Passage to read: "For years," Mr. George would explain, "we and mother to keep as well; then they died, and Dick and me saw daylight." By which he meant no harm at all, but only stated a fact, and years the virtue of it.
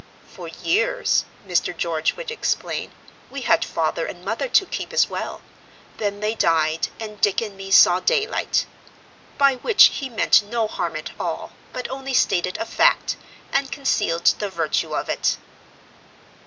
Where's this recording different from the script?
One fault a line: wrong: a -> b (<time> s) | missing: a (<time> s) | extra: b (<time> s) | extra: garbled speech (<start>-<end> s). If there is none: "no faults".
extra: had father (3.4 s)
wrong: years -> concealed (13.7 s)